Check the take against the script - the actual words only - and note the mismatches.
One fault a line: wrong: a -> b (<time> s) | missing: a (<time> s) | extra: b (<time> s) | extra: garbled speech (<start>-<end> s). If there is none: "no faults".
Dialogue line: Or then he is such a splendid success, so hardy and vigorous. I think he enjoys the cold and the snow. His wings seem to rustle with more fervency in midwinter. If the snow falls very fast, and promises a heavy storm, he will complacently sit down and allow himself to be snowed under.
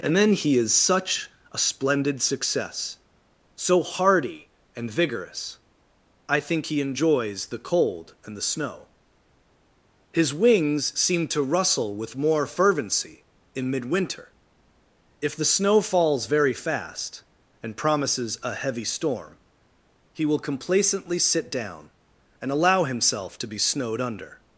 wrong: Or -> And (0.0 s)